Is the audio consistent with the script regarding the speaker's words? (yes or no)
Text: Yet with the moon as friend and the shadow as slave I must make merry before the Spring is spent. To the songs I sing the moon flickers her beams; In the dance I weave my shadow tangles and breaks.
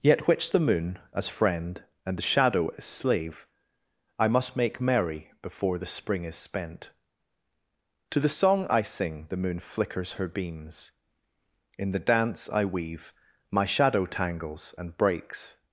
no